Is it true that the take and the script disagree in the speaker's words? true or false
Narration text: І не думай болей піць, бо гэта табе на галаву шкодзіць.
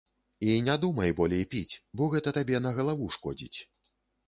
false